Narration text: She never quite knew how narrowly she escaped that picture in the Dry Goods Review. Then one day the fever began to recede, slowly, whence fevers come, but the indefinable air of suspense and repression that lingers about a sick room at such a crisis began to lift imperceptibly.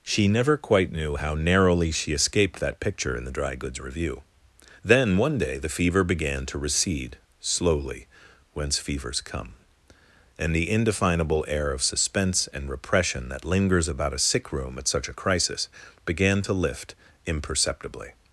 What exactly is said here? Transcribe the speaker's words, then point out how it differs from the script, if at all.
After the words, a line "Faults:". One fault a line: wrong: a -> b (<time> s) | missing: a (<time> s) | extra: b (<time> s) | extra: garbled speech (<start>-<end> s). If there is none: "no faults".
She never quite knew how narrowly she escaped that picture in the Dry Goods Review. Then one day the fever began to recede, slowly, whence fevers come, and the indefinable air of suspense and repression that lingers about a sick room at such a crisis began to lift imperceptibly.
Faults:
wrong: but -> and (10.4 s)